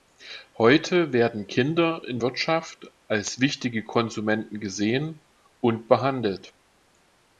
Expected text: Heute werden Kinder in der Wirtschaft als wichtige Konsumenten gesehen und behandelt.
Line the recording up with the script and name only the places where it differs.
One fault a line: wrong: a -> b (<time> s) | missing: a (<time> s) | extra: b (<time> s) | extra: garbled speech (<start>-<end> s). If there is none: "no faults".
missing: der (2.2 s)